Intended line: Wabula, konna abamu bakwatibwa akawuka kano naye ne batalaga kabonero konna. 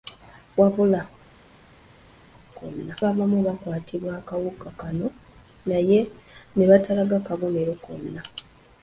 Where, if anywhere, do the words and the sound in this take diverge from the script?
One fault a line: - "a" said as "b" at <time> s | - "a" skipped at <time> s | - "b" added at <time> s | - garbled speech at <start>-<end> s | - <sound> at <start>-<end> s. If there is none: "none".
none